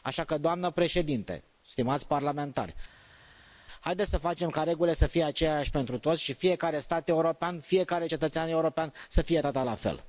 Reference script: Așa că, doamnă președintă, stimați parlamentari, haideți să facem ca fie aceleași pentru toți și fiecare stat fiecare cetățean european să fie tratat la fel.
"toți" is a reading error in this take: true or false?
false